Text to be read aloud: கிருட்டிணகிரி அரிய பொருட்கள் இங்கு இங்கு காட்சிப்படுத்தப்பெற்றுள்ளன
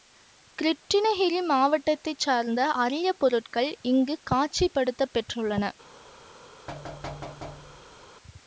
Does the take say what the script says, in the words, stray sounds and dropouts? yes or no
no